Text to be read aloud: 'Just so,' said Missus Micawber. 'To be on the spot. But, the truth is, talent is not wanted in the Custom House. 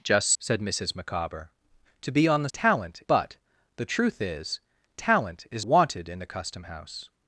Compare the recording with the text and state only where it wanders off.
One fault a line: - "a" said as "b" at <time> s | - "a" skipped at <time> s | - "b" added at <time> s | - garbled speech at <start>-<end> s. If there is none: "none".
- "so" skipped at 0.3 s
- "spot" said as "talent" at 2.5 s
- "not" skipped at 5.7 s